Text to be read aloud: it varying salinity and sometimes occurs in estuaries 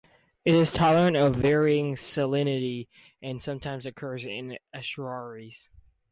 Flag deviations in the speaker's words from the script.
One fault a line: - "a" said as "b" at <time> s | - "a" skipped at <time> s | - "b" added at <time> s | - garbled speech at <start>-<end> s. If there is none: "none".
- "is tolerant of" added at 0.5 s